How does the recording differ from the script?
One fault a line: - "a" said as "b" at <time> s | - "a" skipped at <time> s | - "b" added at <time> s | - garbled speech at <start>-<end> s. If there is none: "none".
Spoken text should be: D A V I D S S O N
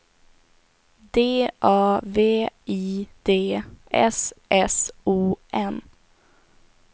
none